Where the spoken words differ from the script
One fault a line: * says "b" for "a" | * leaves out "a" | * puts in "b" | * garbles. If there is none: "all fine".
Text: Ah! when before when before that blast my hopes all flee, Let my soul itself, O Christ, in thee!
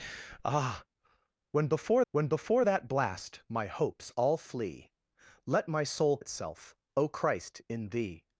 all fine